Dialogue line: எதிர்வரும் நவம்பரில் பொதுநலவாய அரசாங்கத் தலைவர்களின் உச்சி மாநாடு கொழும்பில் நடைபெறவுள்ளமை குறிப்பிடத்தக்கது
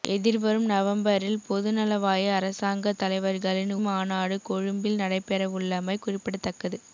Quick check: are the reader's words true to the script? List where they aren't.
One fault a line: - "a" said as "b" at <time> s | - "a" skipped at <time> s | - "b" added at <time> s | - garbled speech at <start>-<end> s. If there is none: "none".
- "உச்சி" skipped at 3.7 s